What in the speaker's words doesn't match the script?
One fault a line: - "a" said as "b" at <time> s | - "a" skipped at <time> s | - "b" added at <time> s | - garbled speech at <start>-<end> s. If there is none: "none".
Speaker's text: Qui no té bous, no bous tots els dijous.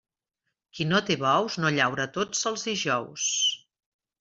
- "bous" said as "llaura" at 1.8 s